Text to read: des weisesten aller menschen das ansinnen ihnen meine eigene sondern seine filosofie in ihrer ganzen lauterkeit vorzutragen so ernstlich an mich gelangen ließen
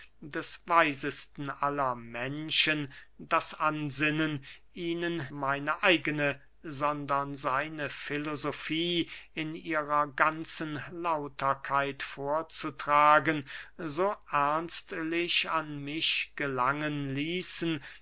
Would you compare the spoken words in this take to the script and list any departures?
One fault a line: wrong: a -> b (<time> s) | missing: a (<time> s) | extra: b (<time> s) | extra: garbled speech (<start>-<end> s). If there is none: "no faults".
no faults